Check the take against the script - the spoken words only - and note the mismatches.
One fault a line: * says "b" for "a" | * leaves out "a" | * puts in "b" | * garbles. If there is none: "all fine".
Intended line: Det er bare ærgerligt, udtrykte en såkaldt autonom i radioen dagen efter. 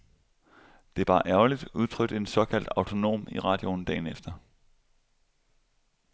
all fine